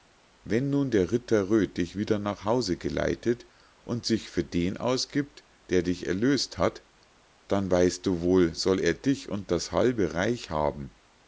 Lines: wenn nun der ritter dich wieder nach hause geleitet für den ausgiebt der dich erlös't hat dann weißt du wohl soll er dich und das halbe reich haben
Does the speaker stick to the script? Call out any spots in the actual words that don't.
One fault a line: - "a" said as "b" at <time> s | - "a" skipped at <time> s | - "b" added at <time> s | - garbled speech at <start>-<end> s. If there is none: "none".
- "röd" added at 1.5 s
- "und sich" added at 3.8 s